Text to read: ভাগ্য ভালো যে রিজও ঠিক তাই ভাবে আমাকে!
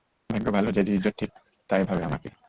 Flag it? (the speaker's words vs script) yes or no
no